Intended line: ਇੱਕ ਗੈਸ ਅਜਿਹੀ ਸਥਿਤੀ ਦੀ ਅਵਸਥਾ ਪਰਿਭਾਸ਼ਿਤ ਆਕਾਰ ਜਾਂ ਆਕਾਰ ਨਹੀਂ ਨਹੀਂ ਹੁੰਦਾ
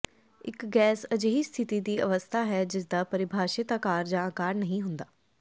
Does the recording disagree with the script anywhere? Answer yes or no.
yes